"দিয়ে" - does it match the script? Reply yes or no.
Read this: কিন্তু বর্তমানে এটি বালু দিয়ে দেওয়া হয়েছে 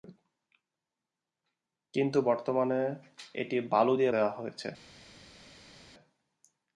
yes